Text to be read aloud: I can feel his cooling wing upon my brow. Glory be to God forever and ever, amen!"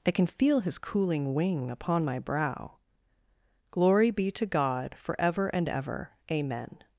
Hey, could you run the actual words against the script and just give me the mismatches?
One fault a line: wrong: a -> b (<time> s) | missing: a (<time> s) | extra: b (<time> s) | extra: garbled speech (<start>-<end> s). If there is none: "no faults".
no faults